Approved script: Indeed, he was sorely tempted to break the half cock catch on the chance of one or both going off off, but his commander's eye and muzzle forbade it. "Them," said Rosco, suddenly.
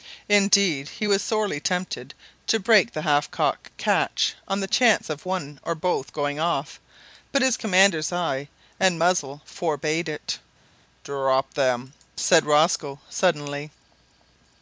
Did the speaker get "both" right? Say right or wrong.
right